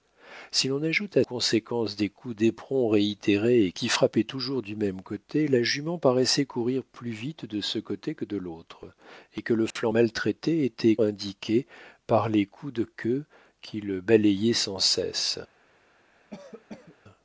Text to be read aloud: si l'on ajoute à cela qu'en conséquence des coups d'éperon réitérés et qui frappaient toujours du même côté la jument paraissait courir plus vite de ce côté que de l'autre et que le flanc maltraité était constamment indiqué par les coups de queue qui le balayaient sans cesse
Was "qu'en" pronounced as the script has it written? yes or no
no